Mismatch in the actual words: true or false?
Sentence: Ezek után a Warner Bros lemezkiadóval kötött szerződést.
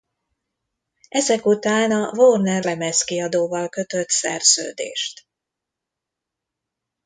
true